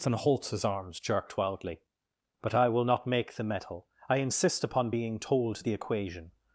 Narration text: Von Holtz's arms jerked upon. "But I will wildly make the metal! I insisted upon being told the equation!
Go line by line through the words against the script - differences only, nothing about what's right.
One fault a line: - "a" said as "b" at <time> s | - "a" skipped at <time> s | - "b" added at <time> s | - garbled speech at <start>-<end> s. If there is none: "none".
- "upon" said as "wildly" at 1.4 s
- "wildly" said as "not" at 2.9 s
- "insisted" said as "insist" at 4.2 s